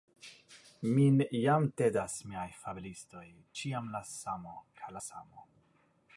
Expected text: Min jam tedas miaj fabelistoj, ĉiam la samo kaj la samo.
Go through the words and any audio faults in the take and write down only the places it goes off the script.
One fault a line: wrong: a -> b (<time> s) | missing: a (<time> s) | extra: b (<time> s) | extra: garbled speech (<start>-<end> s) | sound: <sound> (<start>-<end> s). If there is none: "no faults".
no faults